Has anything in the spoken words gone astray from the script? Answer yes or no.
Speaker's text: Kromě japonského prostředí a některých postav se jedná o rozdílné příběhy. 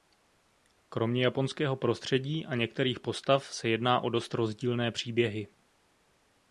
yes